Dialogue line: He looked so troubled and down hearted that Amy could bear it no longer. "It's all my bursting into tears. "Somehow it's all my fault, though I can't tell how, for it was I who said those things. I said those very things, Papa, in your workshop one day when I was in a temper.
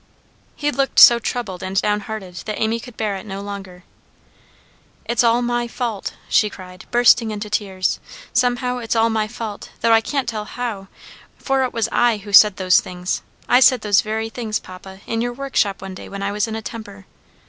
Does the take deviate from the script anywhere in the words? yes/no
yes